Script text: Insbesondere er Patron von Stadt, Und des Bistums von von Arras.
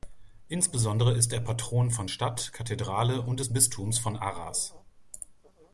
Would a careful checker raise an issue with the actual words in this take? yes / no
yes